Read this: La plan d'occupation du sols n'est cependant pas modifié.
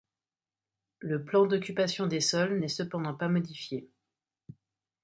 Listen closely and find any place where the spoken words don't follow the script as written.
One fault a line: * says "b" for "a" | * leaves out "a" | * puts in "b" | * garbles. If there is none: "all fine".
* says "Le" for "La"
* says "des" for "du"